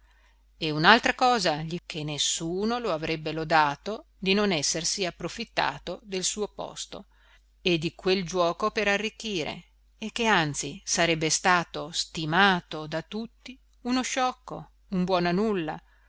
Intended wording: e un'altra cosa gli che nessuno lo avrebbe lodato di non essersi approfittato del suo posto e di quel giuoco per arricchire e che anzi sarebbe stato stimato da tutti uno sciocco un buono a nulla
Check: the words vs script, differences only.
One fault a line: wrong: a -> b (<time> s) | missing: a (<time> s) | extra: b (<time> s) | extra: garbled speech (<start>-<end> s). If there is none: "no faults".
no faults